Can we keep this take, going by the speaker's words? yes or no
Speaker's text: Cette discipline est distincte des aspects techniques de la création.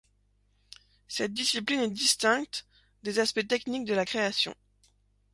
yes